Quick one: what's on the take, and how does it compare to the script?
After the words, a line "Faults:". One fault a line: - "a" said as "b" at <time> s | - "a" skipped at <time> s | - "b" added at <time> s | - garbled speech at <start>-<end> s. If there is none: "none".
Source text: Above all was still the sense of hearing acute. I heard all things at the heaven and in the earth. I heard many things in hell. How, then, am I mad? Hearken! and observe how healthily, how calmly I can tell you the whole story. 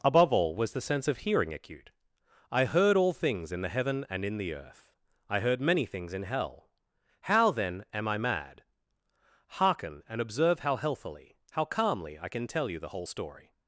Above all was the sense of hearing acute. I heard all things in the heaven and in the earth. I heard many things in hell. How, then, am I mad? Hearken! and observe how healthily, how calmly I can tell you the whole story.
Faults:
- "still" skipped at 0.7 s
- "at" said as "in" at 3.5 s